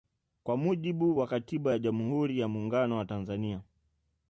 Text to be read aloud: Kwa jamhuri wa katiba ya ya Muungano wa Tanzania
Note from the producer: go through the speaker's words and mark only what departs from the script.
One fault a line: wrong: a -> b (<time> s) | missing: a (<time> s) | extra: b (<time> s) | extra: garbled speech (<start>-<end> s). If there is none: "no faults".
wrong: jamhuri -> mujibu (0.6 s)
extra: jamhuri (1.8 s)